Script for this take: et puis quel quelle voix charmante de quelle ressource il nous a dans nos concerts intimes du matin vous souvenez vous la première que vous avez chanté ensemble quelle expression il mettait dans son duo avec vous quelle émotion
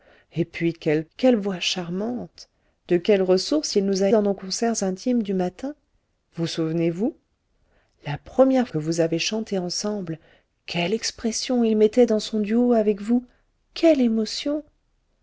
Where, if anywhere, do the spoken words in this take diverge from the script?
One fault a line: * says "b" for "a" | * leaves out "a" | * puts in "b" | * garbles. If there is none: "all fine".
all fine